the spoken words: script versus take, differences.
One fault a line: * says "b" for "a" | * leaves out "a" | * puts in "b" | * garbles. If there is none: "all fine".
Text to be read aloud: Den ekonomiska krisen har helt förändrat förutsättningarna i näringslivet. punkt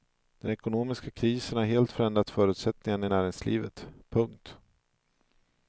all fine